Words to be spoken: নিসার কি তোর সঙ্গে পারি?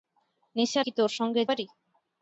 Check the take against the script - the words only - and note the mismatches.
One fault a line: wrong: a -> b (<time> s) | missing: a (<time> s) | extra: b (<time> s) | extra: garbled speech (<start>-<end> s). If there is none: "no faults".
no faults